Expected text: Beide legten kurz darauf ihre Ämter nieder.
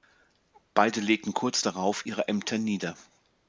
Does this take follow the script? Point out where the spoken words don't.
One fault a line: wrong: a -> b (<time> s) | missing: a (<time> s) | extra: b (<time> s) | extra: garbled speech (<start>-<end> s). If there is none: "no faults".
no faults